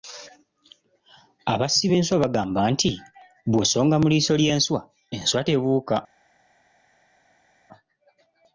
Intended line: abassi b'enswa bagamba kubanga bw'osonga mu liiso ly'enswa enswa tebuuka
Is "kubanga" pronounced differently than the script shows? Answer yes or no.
yes